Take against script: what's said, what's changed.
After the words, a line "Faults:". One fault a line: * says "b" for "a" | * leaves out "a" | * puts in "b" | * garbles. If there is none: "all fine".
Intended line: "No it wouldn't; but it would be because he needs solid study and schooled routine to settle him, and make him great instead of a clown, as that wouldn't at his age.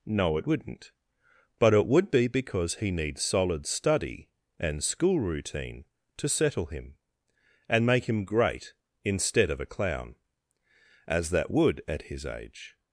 "No it wouldn't; but it would be because he needs solid study and school routine to settle him, and make him great instead of a clown, as that would at his age.
Faults:
* says "school" for "schooled"
* says "would" for "wouldn't"